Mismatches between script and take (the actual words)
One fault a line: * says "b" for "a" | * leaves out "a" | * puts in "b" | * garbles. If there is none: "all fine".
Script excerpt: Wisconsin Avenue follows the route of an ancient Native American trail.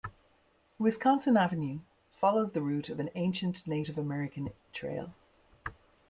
all fine